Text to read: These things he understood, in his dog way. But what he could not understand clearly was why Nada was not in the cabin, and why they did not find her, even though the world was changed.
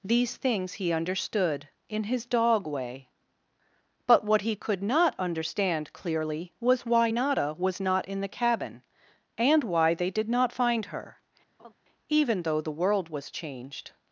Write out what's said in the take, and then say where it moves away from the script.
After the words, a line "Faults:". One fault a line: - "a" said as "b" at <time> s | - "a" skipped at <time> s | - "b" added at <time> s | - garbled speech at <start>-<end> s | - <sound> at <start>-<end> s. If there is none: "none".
These things he understood, in his dog way. But what he could not understand clearly was why Nada was not in the cabin, and why they did not find her, even though the world was changed.
Faults:
- laugh at 11.6-11.7 s